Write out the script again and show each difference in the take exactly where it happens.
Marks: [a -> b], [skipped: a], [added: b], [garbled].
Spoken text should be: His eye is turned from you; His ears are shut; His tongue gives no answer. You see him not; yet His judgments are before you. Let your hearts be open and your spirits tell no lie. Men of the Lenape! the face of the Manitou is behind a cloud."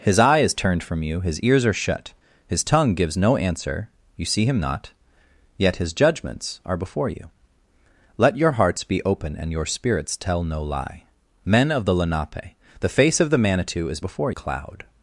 His eye is turned from you; His ears are shut; His tongue gives no answer. You see him not; yet His judgments are before you. Let your hearts be open and your spirits tell no lie. Men of the Lenape! the face of the Manitou is [behind -> before] a cloud."